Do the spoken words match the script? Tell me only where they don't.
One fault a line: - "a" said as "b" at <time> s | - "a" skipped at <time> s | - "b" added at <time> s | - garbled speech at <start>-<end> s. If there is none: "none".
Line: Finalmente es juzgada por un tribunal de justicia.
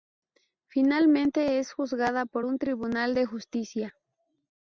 none